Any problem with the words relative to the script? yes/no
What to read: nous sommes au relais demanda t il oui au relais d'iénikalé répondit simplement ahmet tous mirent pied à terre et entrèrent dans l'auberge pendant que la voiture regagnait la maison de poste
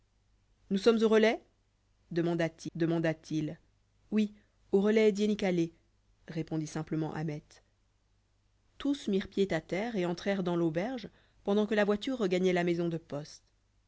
yes